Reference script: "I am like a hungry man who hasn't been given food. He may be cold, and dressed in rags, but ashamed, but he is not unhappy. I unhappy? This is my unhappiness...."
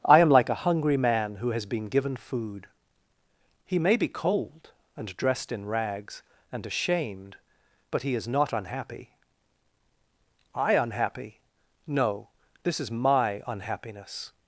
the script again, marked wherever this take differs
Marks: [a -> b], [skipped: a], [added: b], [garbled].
"I am like a hungry man who [hasn't -> has] been given food. He may be cold, and dressed in rags, [but -> and] ashamed, but he is not unhappy. I unhappy? [added: No] This is my unhappiness...."